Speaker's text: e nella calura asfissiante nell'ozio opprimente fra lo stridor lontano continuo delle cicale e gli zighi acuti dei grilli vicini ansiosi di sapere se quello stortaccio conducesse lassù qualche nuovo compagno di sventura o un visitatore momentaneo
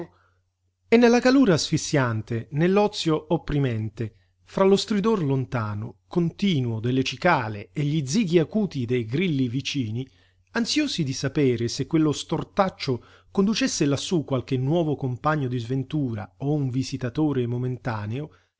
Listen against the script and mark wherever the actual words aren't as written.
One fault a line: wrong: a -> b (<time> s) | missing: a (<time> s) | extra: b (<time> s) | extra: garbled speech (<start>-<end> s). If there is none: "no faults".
no faults